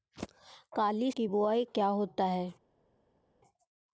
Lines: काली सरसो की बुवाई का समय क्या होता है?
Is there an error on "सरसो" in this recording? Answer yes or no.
yes